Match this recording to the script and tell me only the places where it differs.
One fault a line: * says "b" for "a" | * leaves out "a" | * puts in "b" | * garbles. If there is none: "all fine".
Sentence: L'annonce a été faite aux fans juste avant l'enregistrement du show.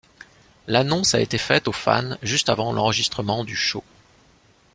all fine